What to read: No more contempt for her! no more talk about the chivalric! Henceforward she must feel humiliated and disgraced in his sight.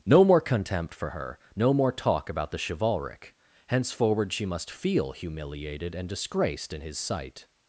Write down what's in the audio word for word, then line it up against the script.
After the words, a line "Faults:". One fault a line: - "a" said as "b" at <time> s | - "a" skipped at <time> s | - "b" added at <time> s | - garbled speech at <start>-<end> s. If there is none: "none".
No more contempt for her! no more talk about the chivalric! Henceforward she must feel humiliated and disgraced in his sight.
Faults:
none